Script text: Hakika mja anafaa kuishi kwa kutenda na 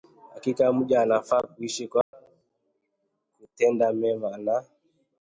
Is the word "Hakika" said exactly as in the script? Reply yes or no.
yes